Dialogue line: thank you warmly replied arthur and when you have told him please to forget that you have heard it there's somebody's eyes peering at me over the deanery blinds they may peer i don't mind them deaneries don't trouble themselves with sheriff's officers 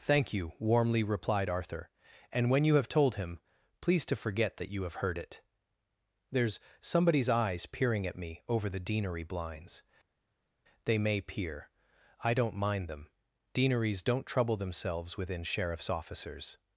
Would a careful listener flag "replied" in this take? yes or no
no